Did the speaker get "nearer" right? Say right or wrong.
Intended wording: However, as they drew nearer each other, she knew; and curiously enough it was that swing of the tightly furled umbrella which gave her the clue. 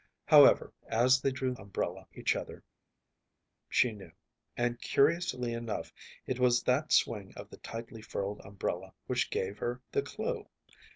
wrong